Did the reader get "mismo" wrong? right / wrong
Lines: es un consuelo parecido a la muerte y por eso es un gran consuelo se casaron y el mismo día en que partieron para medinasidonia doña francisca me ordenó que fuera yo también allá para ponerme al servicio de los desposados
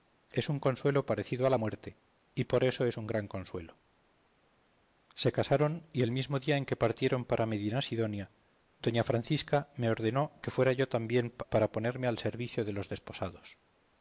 right